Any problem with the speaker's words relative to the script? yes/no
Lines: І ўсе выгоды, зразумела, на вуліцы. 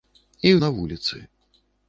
yes